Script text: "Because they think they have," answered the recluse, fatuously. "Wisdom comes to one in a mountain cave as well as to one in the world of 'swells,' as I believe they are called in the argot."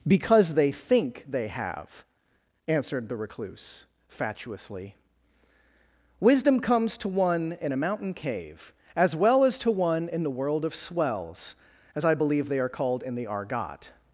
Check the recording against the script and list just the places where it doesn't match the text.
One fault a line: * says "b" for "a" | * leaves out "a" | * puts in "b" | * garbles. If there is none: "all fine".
all fine